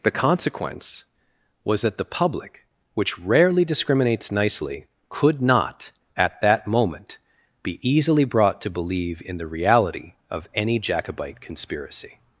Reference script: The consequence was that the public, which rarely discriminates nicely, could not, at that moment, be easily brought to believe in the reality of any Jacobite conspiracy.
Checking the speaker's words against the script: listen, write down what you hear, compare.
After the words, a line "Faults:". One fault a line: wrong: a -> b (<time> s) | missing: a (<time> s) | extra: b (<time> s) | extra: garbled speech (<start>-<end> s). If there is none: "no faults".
The consequence was that the public, which rarely discriminates nicely, could not, at that moment, be easily brought to believe in the reality of any Jacobite conspiracy.
Faults:
no faults